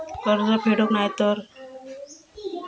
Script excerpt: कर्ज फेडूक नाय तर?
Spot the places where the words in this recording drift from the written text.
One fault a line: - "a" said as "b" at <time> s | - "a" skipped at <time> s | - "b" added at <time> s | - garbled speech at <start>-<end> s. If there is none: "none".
none